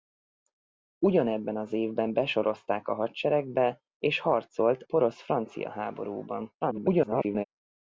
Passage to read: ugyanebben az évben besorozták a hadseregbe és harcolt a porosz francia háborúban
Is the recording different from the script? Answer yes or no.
yes